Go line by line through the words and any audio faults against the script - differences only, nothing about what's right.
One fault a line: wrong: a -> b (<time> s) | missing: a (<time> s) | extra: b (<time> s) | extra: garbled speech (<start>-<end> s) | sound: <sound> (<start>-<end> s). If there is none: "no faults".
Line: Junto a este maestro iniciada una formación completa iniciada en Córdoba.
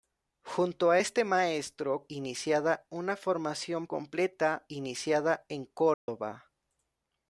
sound: dropout (5.9-6.1 s)